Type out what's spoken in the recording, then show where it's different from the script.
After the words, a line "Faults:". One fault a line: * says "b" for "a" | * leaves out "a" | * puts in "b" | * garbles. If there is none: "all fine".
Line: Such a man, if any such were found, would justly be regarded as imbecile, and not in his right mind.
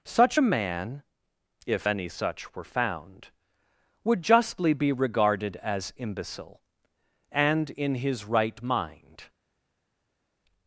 Such a man, if any such were found, would justly be regarded as imbecile, and in his right mind.
Faults:
* leaves out "not"